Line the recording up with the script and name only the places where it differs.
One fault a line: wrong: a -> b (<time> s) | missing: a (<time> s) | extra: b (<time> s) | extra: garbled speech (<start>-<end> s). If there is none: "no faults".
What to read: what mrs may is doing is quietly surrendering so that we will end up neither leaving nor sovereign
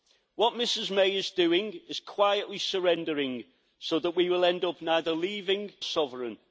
missing: nor (5.7 s)